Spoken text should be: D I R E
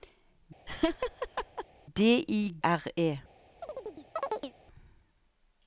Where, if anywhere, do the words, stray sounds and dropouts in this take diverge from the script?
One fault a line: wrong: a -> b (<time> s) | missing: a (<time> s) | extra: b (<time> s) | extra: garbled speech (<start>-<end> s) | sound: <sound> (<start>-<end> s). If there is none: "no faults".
sound: laugh (0.7-1.7 s)
sound: chirp (3.6-4.5 s)